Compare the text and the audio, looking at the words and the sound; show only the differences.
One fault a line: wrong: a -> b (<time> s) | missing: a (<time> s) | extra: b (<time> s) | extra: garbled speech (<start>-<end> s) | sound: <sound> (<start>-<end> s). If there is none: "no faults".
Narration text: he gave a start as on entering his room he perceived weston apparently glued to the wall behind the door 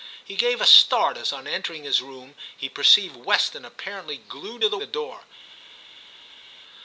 missing: wall behind (4.8 s)